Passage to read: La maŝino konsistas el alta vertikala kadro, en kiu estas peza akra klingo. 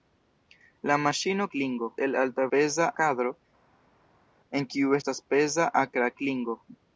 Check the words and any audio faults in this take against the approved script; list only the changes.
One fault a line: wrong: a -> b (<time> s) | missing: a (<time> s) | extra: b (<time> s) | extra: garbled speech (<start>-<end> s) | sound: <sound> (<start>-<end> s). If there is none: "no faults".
wrong: konsistas -> klingo (1.6 s)
wrong: vertikala -> peza (2.6 s)